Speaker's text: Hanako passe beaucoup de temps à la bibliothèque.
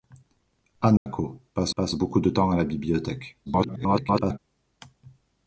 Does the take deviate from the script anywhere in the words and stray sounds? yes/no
yes